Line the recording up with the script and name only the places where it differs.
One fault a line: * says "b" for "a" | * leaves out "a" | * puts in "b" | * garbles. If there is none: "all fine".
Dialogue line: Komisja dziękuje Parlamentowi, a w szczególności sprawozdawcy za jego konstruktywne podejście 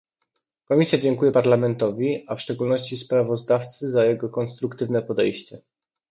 all fine